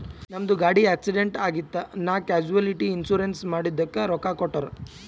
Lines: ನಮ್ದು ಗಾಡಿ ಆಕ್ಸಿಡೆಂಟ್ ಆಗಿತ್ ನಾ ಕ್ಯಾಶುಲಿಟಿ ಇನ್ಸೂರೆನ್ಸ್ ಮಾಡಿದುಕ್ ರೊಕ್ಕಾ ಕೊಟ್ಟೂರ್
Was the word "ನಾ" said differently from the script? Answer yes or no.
no